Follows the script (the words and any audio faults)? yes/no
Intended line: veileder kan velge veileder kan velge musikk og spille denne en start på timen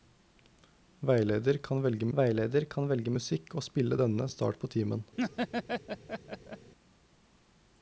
no